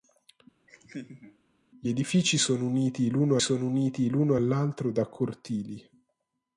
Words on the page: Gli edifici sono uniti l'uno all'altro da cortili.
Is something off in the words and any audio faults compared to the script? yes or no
yes